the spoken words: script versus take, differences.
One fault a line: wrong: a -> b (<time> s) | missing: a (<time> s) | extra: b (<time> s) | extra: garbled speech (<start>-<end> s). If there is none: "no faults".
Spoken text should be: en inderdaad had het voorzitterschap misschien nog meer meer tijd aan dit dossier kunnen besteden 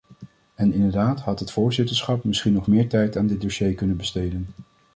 missing: meer (2.9 s)